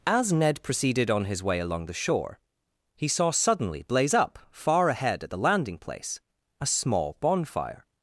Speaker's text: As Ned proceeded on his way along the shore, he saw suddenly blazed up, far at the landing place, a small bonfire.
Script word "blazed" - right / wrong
wrong